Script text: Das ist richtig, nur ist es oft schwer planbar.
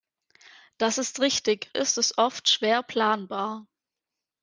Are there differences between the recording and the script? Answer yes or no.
yes